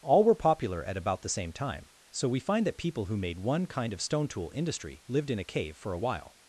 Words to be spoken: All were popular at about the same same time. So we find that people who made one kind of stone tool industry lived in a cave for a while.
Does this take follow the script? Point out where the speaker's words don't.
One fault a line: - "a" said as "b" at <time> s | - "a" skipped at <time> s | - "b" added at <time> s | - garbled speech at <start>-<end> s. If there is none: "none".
- "same" skipped at 1.5 s